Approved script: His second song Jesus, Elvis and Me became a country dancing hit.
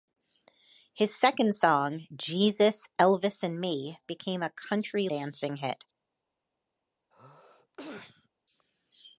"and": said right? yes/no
yes